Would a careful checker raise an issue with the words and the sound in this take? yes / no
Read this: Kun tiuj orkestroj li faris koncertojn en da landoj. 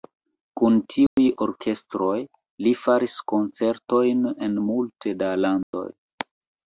yes